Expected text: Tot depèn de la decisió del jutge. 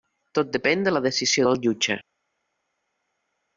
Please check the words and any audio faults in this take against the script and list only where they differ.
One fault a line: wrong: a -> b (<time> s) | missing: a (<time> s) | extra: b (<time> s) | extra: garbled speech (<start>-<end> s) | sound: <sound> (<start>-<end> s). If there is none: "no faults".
no faults